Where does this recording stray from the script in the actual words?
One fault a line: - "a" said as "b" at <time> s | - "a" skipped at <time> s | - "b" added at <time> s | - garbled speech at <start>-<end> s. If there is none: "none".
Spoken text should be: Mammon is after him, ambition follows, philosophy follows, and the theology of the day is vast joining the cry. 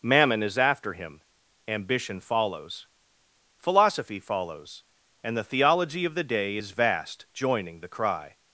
none